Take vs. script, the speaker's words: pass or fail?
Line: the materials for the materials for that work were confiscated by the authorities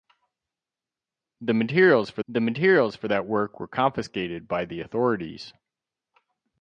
pass